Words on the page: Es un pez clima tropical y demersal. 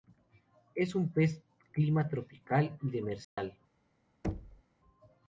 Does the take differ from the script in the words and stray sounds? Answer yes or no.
yes